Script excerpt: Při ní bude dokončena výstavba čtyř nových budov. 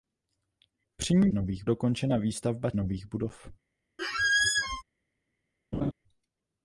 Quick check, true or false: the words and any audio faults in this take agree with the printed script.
false